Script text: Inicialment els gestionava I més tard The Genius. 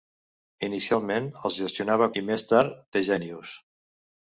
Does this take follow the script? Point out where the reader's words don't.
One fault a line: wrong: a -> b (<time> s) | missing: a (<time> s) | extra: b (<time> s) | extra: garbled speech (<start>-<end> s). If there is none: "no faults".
no faults